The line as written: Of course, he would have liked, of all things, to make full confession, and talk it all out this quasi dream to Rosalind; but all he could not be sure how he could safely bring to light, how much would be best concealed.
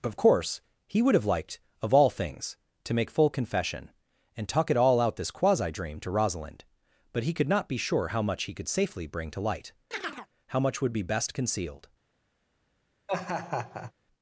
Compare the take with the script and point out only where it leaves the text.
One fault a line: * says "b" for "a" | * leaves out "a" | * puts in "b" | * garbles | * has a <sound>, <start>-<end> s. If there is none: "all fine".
* leaves out "all"
* puts in "much"
* has a chirp, 9.9-10.3 s
* has a laugh, 13.1-13.9 s